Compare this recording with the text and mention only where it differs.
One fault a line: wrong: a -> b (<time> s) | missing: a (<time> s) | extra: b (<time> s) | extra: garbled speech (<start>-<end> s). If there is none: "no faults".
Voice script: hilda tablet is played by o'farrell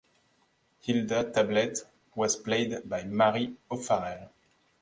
wrong: is -> was (2.1 s)
extra: mary (3.0 s)